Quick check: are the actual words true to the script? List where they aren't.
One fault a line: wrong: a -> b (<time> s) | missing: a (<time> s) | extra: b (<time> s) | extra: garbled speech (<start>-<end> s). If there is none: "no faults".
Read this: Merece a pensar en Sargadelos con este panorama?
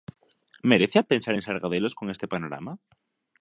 no faults